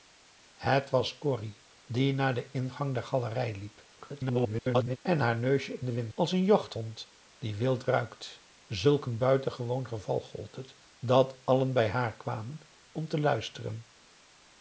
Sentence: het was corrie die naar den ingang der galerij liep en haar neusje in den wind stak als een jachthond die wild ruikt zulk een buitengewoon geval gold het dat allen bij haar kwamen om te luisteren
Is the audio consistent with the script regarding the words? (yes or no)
no